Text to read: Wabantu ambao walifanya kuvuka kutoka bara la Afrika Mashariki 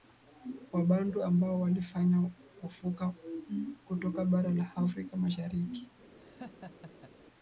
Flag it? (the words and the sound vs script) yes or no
yes